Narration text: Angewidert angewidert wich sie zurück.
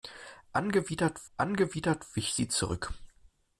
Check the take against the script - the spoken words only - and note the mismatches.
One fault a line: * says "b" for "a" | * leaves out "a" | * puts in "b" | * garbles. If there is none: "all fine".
all fine